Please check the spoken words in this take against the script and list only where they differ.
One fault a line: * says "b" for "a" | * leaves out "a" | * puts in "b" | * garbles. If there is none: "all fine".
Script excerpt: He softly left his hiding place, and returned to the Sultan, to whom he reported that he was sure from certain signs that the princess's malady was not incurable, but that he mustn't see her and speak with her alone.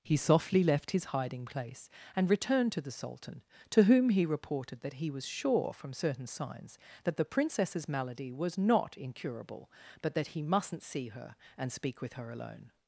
all fine